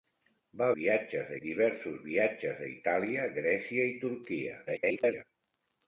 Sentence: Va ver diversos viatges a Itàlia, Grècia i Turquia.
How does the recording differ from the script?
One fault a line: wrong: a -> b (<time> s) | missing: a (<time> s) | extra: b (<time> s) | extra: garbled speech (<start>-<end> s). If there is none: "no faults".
wrong: ver -> viatges (0.8 s)
extra: garbled speech (4.7-5.2 s)